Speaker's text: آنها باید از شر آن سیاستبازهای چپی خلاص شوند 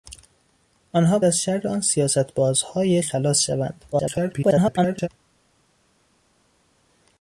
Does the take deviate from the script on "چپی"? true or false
true